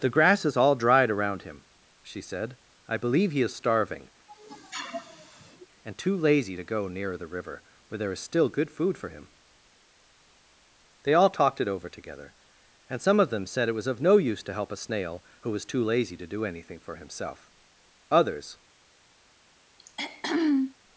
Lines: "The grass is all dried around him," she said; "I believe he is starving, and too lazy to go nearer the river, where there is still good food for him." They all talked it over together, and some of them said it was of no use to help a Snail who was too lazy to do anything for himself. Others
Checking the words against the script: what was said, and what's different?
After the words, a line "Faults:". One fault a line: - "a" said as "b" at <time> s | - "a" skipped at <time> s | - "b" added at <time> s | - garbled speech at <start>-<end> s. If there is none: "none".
"The grass is all dried around him," she said; "I believe he is starving, and too lazy to go nearer the river, where there is still good food for him." They all talked it over together, and some of them said it was of no use to help a Snail who was too lazy to do anything for himself. Others
Faults:
none